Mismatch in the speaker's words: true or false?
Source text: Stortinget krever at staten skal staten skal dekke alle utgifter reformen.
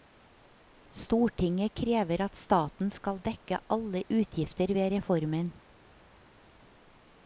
true